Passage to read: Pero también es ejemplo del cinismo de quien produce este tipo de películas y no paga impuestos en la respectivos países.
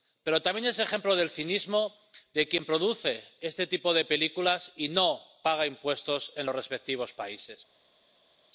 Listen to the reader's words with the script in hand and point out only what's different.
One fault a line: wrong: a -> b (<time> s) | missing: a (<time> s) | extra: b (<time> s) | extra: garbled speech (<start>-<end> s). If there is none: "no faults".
wrong: la -> los (6.4 s)